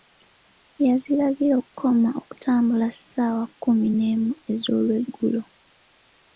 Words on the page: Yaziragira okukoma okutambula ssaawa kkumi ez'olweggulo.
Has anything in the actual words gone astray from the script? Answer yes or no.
yes